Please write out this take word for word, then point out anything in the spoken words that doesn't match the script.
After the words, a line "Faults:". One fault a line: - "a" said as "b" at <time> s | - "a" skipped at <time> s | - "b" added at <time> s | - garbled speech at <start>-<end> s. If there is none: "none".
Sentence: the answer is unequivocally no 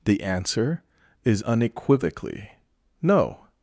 the answer is unequivocally no
Faults:
none